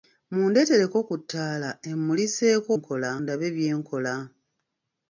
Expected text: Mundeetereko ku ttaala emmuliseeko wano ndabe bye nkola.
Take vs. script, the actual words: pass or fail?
fail